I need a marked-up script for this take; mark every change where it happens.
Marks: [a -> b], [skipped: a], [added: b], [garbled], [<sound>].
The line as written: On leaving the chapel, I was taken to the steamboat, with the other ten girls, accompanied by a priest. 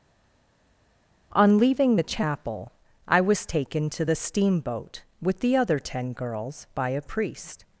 On leaving the chapel, I was taken to the steamboat, with the other ten girls, [skipped: accompanied] by a priest.